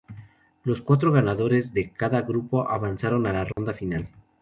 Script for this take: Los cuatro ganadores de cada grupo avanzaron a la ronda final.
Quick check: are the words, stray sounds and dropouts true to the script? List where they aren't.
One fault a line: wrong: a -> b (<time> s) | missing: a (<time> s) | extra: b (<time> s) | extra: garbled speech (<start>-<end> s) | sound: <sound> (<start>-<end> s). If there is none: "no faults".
sound: dropout (3.5-3.6 s)